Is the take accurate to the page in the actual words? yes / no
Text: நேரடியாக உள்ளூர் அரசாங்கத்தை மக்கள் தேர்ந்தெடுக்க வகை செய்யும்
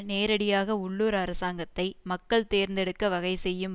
yes